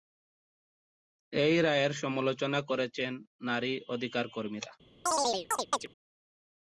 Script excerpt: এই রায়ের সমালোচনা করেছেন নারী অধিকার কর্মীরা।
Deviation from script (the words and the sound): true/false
true